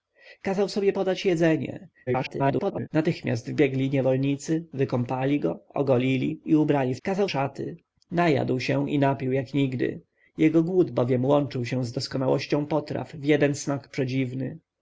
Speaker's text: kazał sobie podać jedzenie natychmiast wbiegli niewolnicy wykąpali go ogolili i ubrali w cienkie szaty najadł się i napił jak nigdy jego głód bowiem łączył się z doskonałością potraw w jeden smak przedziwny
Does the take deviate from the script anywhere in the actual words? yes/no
yes